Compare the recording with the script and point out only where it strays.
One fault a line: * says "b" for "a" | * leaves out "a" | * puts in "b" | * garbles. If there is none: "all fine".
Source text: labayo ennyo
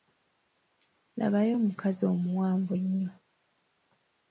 * puts in "omukazi omuwanvu"